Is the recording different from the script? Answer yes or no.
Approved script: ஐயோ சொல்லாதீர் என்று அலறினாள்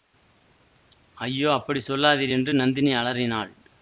yes